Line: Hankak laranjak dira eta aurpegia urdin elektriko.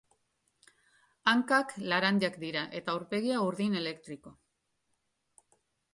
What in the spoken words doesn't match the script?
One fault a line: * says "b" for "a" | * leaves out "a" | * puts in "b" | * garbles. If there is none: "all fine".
all fine